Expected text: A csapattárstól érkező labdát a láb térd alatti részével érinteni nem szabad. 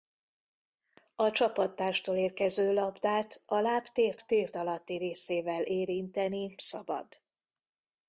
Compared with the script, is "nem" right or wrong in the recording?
wrong